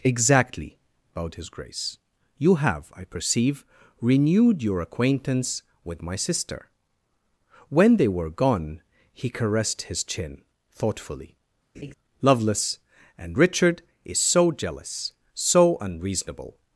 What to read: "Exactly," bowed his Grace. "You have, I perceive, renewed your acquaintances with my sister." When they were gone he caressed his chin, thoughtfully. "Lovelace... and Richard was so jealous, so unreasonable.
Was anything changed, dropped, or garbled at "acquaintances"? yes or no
yes